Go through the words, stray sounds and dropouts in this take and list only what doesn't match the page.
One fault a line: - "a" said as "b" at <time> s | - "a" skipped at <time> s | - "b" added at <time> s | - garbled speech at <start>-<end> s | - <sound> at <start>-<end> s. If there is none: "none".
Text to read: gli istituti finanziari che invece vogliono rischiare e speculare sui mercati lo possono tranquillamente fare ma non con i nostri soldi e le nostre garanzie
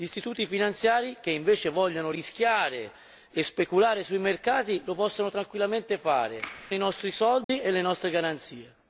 - "ma non con" skipped at 6.4 s
- dropout at 7.4-7.5 s